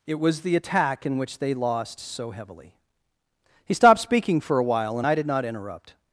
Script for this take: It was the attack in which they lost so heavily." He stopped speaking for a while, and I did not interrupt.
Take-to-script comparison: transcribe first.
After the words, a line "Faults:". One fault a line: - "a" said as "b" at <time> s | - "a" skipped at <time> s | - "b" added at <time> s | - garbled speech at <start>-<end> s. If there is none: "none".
It was the attack in which they lost so heavily." He stopped speaking for a while, and I did not interrupt.
Faults:
none